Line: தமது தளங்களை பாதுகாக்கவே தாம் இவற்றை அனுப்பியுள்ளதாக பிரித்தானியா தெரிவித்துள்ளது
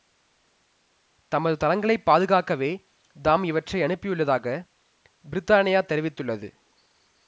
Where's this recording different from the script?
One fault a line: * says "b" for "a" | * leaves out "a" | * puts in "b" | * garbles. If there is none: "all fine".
all fine